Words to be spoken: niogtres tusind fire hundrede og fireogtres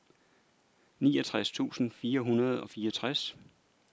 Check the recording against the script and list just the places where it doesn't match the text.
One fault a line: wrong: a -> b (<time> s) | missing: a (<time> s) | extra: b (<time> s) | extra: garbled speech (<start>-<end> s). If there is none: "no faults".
no faults